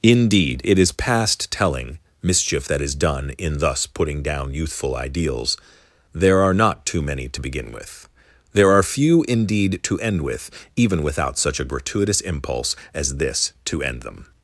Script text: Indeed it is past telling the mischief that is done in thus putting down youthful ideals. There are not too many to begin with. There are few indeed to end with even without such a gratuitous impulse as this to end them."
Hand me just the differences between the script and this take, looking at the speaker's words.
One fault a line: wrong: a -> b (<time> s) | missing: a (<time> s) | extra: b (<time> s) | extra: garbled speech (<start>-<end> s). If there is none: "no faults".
missing: the (2.0 s)